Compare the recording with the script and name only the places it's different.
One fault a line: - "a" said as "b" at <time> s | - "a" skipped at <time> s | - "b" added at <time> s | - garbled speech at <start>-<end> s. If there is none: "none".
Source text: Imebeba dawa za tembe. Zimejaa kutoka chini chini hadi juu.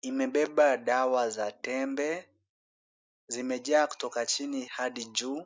- "chini" skipped at 4.7 s